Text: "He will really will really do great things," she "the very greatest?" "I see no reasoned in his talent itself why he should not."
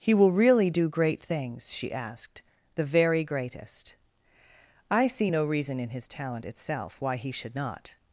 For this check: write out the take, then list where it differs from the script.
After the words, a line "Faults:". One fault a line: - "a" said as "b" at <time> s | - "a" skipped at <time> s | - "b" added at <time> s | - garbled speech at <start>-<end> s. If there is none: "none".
"He will really do great things," she asked, "the very greatest?" "I see no reason in his talent itself why he should not."
Faults:
- "will really" skipped at 0.7 s
- "asked" added at 1.9 s
- "reasoned" said as "reason" at 5.4 s